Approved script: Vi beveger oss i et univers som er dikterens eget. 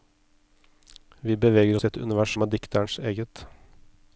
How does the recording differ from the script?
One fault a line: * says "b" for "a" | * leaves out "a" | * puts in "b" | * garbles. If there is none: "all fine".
all fine